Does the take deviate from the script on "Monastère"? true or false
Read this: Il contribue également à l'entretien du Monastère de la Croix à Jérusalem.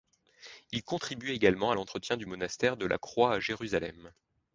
false